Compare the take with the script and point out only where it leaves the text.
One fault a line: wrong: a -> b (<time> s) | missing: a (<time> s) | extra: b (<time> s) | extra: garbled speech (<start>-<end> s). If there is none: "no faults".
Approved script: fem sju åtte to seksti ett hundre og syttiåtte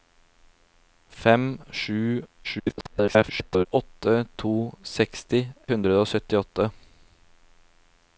extra: garbled speech (2.4-3.7 s)
missing: ett (5.4 s)